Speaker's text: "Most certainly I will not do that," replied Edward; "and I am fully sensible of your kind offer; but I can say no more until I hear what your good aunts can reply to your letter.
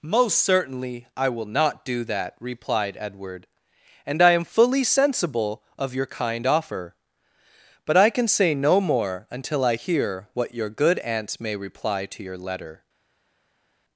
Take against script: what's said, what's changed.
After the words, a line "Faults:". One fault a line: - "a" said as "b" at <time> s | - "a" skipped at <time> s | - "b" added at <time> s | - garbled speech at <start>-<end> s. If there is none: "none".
"Most certainly I will not do that," replied Edward; "and I am fully sensible of your kind offer; but I can say no more until I hear what your good aunts may reply to your letter.
Faults:
- "can" said as "may" at 11.4 s